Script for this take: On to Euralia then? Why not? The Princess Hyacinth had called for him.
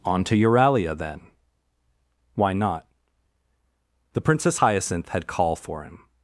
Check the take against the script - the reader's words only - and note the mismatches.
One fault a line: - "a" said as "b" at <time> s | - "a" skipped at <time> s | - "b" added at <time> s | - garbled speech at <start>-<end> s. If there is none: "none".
- "called" said as "call" at 5.3 s